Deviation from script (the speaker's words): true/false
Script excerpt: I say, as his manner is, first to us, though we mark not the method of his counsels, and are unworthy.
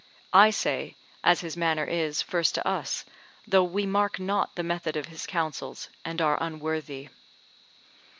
false